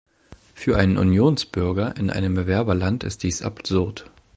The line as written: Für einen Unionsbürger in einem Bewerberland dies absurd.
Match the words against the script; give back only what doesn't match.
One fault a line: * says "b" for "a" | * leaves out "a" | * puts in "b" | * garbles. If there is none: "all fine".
* puts in "ist"